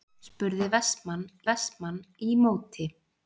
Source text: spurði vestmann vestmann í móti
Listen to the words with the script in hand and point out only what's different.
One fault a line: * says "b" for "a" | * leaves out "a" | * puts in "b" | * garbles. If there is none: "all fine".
all fine